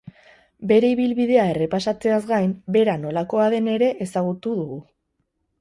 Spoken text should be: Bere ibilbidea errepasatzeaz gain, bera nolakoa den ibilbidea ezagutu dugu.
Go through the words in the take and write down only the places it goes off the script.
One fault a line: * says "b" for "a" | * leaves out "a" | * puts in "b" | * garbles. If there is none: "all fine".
* says "ere" for "ibilbidea"